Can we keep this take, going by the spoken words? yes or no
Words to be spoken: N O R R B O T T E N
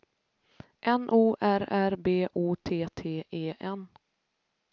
yes